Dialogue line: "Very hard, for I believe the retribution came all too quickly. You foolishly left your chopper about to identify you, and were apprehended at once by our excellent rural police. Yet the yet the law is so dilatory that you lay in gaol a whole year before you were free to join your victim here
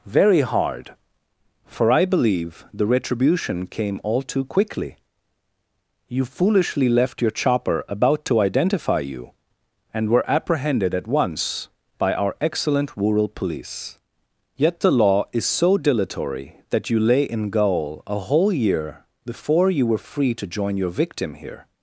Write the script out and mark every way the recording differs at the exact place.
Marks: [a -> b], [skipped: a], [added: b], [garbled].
"Very hard, for I believe the retribution came all too quickly. You foolishly left your chopper about to identify you, and were apprehended at once by our excellent rural police. Yet the [skipped: yet the] law is so dilatory that you lay in gaol a whole year before you were free to join your victim here